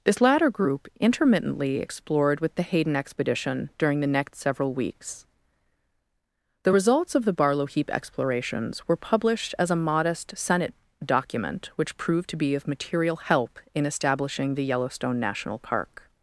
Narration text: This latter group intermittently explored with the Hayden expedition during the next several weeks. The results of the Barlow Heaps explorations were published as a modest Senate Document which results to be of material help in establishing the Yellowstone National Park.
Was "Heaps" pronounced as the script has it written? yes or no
no